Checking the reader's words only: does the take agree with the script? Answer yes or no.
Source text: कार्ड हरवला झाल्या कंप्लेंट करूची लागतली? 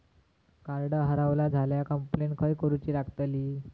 no